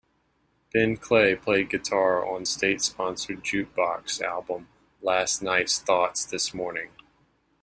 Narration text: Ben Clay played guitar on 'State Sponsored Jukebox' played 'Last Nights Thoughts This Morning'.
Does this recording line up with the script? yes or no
no